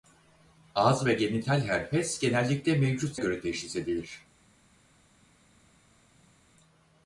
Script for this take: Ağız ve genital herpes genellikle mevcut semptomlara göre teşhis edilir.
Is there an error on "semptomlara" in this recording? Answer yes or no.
yes